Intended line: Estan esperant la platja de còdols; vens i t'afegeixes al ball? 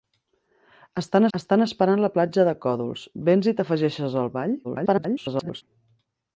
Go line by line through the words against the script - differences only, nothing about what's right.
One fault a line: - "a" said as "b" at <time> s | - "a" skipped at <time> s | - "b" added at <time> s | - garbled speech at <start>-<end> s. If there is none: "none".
- "estan" added at 1.4 s
- garbled speech at 4.6-5.6 s